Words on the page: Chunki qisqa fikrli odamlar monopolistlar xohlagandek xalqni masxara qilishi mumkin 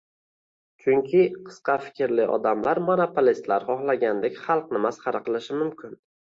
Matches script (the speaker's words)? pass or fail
pass